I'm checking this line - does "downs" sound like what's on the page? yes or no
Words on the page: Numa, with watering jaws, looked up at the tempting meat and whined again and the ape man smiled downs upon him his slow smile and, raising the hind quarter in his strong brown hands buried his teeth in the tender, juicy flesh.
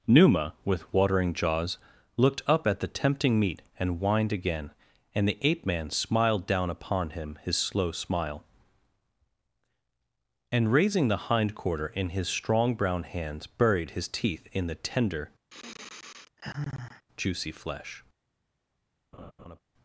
no